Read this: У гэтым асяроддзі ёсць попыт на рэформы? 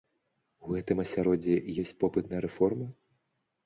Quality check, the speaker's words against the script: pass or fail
pass